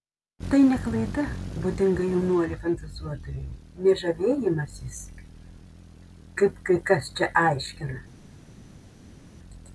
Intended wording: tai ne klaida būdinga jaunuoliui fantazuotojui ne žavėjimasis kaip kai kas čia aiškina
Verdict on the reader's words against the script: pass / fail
pass